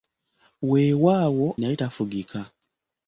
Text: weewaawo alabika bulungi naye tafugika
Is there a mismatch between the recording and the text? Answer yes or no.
yes